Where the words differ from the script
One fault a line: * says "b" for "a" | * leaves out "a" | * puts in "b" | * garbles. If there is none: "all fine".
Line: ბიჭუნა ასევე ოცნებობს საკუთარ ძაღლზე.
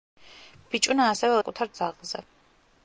* leaves out "ოცნებობს"